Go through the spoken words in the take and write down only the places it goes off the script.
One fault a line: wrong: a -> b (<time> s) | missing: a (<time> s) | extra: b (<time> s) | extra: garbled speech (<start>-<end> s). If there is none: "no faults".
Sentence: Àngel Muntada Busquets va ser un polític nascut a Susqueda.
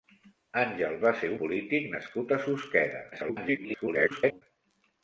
missing: Muntada Busquets (0.9 s)
missing: un (1.3 s)
extra: garbled speech (3.1-4.4 s)